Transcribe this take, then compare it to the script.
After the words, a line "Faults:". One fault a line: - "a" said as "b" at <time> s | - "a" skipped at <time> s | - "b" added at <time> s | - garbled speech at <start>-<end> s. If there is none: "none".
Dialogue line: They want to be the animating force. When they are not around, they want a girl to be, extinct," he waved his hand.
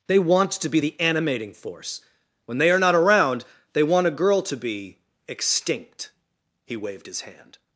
They want to be the animating force. When they are not around, they want a girl to be, extinct," he waved his hand.
Faults:
none